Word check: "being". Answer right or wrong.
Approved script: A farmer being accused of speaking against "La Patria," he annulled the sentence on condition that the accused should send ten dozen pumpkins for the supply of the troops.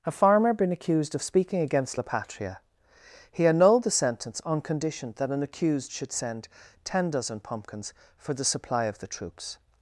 wrong